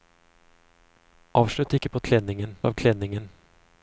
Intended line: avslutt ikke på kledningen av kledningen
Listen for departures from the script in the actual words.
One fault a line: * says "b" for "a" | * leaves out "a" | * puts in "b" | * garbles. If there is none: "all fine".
all fine